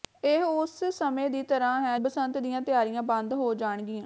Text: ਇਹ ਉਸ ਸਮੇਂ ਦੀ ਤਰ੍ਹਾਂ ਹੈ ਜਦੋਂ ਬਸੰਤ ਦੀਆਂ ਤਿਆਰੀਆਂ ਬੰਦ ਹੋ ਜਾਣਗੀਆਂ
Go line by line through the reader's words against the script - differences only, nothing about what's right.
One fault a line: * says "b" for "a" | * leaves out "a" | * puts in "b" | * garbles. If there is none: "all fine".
* leaves out "ਜਦੋਂ"